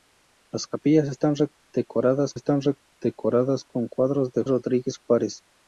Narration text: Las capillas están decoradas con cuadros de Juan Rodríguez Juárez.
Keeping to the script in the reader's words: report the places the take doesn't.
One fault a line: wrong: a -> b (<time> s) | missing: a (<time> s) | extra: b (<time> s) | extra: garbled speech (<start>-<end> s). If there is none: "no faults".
extra: están decoradas (2.3 s)
missing: Juan (4.4 s)